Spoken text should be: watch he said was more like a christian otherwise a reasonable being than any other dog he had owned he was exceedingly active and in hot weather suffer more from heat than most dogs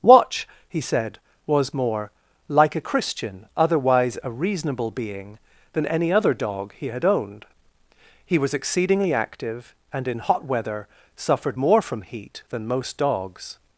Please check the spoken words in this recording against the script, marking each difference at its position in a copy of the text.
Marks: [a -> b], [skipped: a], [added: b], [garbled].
watch he said was more like a christian otherwise a reasonable being than any other dog he had owned he was exceedingly active and in hot weather [suffer -> suffered] more from heat than most dogs